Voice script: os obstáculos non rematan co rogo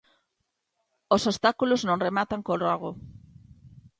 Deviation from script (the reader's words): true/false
false